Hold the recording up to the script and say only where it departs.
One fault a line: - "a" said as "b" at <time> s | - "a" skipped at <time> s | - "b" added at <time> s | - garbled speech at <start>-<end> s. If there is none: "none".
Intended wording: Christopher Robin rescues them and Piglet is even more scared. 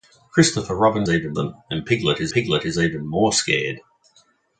- "rescues" said as "even" at 1.1 s
- "Piglet is" added at 2.3 s